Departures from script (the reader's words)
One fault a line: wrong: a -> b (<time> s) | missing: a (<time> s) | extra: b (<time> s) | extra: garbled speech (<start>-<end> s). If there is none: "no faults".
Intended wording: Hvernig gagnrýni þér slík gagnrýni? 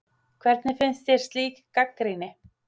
wrong: gagnrýni -> finnst (0.8 s)